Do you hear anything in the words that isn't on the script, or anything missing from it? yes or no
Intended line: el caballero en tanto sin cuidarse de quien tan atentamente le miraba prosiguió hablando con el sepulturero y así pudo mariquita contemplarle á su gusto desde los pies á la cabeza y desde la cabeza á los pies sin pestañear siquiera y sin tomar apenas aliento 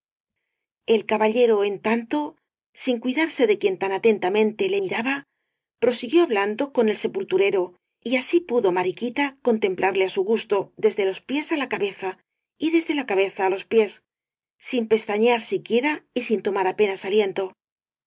no